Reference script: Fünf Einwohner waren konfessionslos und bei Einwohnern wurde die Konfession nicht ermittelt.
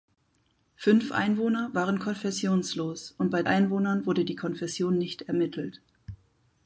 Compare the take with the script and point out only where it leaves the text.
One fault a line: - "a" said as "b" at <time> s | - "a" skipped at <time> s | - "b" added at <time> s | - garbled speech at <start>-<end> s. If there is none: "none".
none